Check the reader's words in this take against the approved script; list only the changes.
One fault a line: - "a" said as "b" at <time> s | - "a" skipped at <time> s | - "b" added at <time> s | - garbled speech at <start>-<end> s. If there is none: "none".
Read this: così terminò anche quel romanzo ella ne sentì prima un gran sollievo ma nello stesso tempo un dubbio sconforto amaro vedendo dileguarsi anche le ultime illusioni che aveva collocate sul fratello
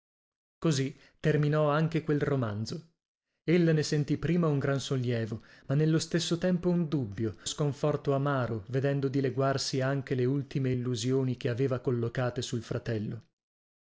none